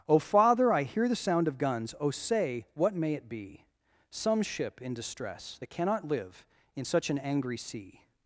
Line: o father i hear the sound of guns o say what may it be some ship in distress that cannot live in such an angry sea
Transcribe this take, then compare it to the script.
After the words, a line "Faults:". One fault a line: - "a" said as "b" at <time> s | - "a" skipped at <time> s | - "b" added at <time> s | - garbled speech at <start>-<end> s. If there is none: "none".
o father i hear the sound of guns o say what may it be some ship in distress that cannot live in such an angry sea
Faults:
none